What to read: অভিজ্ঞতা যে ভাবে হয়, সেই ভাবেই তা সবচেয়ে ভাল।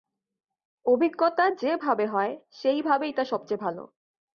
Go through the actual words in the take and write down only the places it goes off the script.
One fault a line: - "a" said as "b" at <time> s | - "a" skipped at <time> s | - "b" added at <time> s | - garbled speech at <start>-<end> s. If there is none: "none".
none